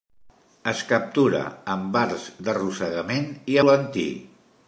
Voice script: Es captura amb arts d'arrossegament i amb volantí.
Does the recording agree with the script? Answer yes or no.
no